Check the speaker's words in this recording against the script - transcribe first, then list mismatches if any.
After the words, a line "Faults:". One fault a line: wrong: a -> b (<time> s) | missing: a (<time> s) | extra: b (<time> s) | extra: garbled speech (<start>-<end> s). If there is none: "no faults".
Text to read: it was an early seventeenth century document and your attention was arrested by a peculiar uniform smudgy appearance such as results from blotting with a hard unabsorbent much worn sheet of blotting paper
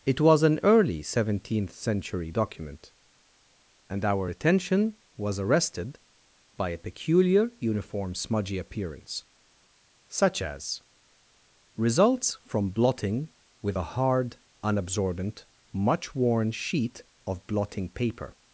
it was an early seventeenth century document and our attention was arrested by a peculiar uniform smudgy appearance such as results from blotting with a hard unabsorbent much worn sheet of blotting paper
Faults:
wrong: your -> our (4.1 s)